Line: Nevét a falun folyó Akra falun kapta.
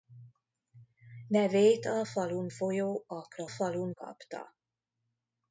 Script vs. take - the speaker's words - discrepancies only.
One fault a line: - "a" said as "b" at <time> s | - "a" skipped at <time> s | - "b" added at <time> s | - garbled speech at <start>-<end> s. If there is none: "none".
none